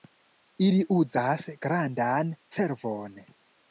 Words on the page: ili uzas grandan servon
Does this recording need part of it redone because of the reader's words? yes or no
no